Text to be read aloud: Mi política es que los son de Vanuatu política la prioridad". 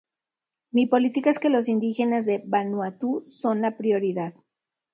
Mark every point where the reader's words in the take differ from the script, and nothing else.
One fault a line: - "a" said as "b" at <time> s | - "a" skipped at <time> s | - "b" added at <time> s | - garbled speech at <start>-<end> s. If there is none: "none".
- "son" said as "indígenas" at 1.7 s
- "política" said as "son" at 3.2 s